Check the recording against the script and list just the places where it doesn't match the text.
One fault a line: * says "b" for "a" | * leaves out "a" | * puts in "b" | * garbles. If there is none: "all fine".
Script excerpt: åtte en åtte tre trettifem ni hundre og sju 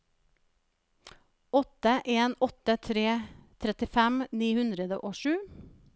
all fine